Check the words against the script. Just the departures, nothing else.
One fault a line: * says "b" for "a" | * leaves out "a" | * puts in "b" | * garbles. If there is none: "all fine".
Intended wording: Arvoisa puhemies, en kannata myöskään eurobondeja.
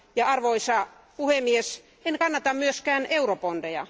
all fine